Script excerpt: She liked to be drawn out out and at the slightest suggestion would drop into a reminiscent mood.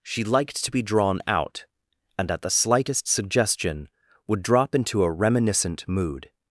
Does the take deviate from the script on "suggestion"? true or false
false